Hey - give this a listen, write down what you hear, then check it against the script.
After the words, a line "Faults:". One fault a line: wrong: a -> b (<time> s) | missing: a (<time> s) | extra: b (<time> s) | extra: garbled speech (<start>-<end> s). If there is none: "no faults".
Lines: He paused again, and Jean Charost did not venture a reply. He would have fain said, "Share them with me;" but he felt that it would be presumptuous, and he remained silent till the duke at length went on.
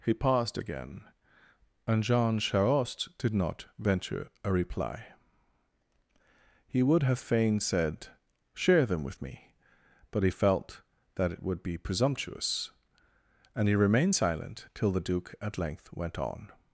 He paused again, and Jean Charost did not venture a reply. He would have fain said, "Share them with me;" but he felt that it would be presumptuous, and he remained silent till the duke at length went on.
Faults:
no faults